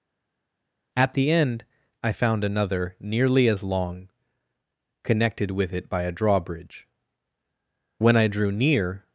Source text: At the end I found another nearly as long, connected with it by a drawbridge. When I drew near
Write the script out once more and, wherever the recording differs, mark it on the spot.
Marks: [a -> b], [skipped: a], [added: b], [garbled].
At the end I found another nearly as long, connected with it by a drawbridge. When I drew near